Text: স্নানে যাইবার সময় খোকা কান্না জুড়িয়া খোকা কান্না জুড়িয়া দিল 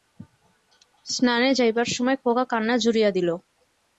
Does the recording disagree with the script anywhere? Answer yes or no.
yes